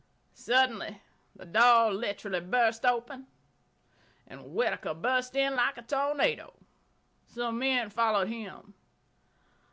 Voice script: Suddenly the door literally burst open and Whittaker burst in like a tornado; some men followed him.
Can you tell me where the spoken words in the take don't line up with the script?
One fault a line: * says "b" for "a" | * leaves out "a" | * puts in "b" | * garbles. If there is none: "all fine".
all fine